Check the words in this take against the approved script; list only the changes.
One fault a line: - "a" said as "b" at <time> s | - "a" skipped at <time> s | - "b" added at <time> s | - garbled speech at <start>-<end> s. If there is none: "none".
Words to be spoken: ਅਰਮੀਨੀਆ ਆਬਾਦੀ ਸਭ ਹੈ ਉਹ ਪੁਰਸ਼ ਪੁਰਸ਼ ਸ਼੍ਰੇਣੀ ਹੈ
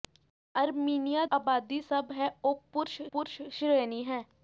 none